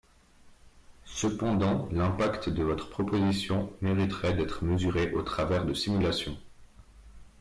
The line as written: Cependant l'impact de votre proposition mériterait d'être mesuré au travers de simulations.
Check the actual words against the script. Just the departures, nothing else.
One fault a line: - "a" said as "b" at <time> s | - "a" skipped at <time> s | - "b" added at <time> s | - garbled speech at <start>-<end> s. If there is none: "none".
none